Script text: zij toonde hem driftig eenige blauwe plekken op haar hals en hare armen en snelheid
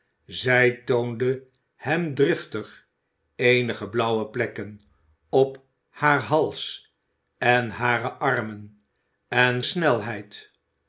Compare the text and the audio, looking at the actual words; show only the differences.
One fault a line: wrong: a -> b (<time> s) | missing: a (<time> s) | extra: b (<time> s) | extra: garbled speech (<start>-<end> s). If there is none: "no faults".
no faults